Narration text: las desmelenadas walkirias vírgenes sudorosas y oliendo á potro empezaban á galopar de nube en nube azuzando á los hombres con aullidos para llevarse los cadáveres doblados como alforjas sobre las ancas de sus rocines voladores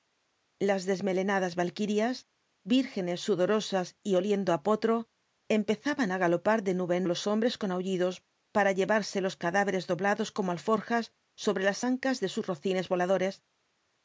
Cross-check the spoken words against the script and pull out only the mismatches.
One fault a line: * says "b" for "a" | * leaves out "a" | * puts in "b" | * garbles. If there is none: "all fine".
* leaves out "nube azuzando"